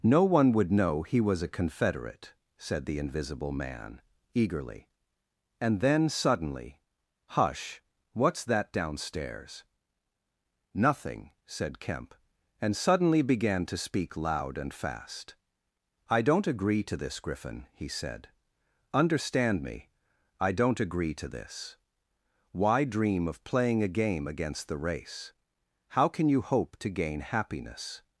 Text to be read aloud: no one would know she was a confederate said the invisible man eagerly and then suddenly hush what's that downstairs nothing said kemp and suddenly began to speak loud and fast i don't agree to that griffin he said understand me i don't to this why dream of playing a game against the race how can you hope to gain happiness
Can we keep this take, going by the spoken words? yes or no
no